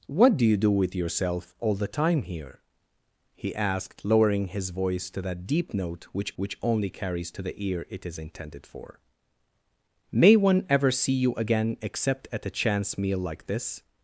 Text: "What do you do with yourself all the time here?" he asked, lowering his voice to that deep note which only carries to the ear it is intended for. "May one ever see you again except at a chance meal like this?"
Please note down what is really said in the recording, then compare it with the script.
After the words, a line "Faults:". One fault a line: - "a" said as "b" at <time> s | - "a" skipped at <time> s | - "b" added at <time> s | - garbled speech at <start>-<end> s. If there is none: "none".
"What do you do with yourself all the time here?" he asked, lowering his voice to that deep note which which only carries to the ear it is intended for. "May one ever see you again except at a chance meal like this?"
Faults:
- "which" added at 6.3 s